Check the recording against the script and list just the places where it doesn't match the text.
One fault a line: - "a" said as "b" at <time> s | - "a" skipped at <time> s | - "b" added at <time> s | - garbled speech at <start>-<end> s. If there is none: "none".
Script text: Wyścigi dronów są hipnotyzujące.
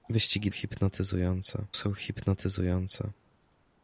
- "dronów" said as "hipnotyzujące" at 0.5 s